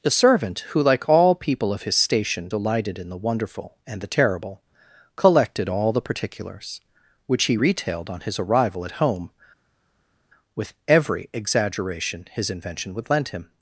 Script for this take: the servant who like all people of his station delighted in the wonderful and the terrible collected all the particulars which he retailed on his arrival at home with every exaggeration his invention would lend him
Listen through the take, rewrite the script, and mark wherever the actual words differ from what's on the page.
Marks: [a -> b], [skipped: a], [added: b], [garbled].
the servant who like all people of his station delighted in the wonderful and the terrible collected all the particulars which he retailed on his arrival at home with every exaggeration his invention would lend him